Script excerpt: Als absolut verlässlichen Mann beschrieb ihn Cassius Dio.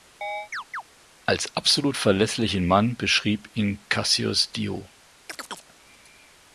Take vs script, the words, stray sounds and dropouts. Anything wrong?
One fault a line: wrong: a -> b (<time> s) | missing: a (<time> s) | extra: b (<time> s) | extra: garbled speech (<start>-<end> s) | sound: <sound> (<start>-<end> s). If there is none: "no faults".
sound: chirp (0.2-0.8 s)
sound: chirp (5.3-5.7 s)